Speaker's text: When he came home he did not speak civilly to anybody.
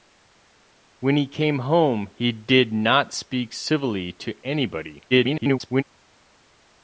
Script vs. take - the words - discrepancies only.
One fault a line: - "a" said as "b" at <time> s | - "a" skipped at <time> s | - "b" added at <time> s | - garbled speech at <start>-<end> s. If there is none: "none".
- garbled speech at 5.1-5.8 s